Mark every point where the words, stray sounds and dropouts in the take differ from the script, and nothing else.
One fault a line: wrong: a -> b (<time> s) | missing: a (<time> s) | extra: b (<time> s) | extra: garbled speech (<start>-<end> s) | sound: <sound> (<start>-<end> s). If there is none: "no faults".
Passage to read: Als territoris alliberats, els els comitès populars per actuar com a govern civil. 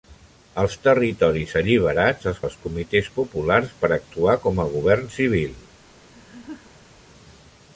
sound: laugh (6.1-6.9 s)